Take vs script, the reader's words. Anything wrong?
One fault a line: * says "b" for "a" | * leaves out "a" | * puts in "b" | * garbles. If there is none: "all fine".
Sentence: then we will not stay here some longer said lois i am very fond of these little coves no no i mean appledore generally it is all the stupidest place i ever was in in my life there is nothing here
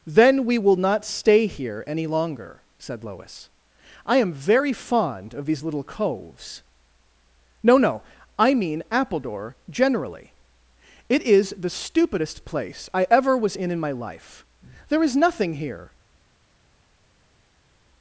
* says "any" for "some"
* leaves out "all"